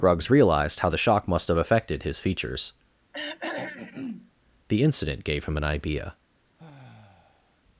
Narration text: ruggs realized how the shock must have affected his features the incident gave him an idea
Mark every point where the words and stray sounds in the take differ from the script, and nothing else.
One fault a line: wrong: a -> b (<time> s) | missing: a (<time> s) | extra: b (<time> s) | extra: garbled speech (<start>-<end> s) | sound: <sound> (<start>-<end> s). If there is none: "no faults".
sound: throat clearing (3.1-4.3 s)
sound: sigh (6.6-7.6 s)